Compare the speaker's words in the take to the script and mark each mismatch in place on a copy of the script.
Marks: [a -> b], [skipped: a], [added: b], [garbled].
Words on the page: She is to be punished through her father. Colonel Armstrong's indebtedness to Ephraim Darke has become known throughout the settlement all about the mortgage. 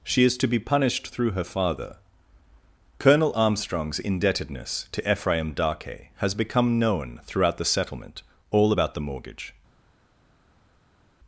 She is to be punished through her father. Colonel Armstrong's indebtedness to Ephraim Darke has become known throughout the settlement all about the mortgage.